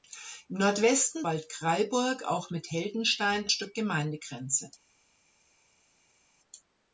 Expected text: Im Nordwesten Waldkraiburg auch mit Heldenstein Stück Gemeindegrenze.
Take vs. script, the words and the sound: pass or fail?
pass